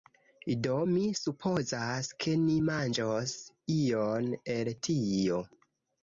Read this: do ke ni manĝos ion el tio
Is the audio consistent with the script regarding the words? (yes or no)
no